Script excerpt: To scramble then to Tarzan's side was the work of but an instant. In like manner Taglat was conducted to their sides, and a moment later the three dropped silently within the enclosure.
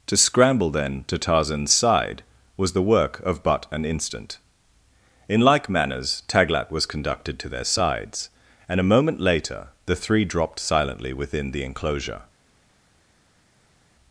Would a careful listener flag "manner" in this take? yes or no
yes